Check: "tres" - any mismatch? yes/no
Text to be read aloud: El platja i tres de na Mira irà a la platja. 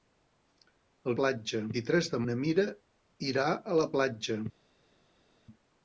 no